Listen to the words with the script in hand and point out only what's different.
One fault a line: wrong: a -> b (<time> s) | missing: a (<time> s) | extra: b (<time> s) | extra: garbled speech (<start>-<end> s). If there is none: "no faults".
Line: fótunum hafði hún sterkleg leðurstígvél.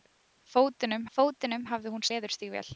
extra: fótunum (1.2 s)
missing: sterkleg (2.1 s)